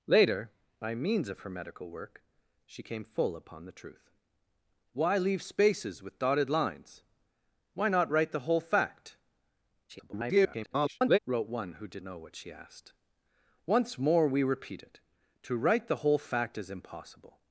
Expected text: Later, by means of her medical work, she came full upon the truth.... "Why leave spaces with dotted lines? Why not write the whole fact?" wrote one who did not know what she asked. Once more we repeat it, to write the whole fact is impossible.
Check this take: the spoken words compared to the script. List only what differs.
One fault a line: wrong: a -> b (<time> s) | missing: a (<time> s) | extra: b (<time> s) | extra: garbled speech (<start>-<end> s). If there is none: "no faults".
extra: garbled speech (9.9-11.2 s)
missing: not (12.0 s)